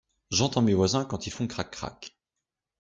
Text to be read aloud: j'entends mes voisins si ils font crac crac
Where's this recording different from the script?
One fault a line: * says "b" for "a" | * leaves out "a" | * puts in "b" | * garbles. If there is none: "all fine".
* says "quand" for "si"